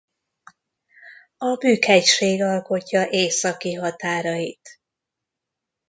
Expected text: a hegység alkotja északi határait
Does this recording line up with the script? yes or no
no